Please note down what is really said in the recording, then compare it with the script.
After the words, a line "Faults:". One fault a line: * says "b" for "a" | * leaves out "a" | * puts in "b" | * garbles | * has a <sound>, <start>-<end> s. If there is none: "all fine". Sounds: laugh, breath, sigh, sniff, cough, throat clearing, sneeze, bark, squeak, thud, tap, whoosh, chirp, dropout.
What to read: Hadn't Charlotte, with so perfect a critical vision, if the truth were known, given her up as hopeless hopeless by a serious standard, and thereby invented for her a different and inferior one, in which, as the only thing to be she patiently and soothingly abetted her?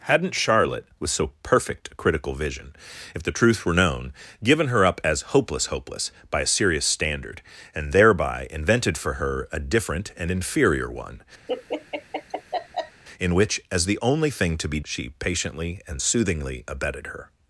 Hadn't Charlotte, with so perfect a critical vision, if the truth were known, given her up as hopeless hopeless by a serious standard, and thereby invented for her a different and inferior one, in which, as the only thing to be she patiently and soothingly abetted her?
Faults:
* has a laugh, 11.5-13.0 s